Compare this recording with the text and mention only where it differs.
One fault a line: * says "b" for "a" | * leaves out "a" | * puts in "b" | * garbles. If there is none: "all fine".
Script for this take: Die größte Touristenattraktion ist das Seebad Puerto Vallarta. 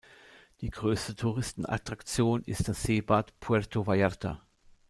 all fine